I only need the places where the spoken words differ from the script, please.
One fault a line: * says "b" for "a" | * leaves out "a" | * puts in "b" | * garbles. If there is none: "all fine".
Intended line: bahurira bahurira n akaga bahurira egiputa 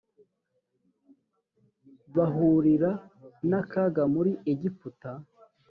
* leaves out "bahurira"
* says "muri" for "bahurira"